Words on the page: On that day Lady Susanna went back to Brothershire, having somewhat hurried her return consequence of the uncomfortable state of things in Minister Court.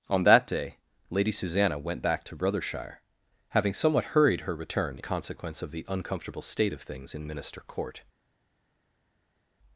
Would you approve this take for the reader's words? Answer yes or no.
yes